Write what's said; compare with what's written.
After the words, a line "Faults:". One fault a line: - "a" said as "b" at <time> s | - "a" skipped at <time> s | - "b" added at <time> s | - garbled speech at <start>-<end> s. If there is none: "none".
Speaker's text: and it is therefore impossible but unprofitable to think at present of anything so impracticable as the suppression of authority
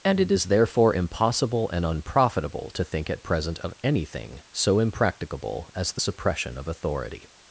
and it is therefore impossible and unprofitable to think at present of anything so impracticable as the suppression of authority
Faults:
- "but" said as "and" at 1.7 s